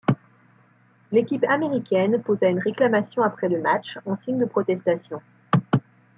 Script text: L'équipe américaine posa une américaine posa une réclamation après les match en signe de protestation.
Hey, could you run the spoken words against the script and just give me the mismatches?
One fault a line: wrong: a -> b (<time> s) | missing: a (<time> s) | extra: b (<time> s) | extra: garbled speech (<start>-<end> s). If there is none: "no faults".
missing: américaine posa une (2.6 s)
wrong: les -> le (3.5 s)